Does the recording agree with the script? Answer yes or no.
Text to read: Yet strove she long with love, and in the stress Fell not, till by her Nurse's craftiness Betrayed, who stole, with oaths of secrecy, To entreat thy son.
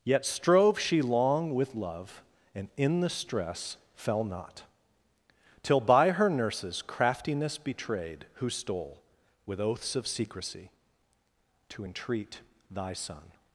yes